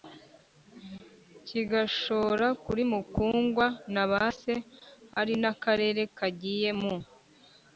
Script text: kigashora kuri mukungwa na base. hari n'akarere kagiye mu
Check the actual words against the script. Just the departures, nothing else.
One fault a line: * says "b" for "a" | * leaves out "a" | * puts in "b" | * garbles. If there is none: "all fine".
all fine